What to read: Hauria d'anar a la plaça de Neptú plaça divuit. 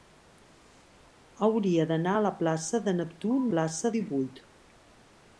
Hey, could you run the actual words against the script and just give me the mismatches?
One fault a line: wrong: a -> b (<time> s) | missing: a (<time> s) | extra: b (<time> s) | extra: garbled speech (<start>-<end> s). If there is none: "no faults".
no faults